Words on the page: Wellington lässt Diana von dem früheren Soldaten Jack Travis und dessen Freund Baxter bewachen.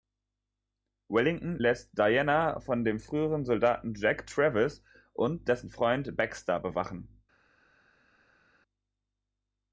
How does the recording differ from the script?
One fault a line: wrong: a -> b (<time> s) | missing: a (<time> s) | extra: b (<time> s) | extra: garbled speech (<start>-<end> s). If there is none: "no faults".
no faults